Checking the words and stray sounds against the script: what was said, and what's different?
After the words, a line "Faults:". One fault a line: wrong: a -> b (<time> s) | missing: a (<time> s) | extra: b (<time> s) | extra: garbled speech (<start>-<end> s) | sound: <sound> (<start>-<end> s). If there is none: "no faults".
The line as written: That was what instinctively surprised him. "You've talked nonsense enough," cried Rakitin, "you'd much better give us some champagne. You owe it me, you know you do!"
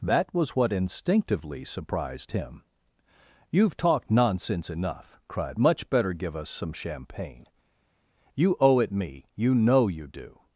That was what instinctively surprised him. "You've talked nonsense enough," cried Much better give us some champagne. You owe it me, you know you do!"
Faults:
missing: Rakitin you'd (5.6 s)